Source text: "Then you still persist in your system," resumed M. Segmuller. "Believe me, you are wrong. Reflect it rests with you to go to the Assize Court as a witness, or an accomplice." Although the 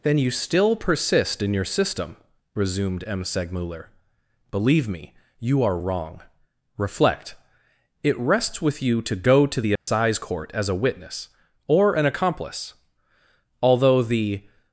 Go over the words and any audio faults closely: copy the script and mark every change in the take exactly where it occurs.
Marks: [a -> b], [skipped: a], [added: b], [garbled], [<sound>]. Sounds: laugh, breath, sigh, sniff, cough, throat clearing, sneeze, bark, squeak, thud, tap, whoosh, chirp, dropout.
"Then you still persist in your system," resumed M. Segmuller. "Believe me, you are wrong. Reflect it rests with you to go to the Assize [dropout] Court as a witness, or an accomplice." Although the